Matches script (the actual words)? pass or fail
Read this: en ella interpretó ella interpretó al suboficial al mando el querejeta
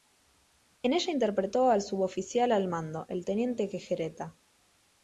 fail